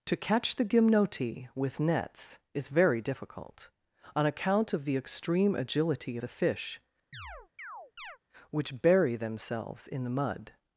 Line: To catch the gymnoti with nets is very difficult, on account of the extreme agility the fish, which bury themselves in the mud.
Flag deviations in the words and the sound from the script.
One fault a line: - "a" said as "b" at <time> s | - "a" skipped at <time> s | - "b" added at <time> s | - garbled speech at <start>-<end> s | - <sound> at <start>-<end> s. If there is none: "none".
- chirp at 7.1-8.2 s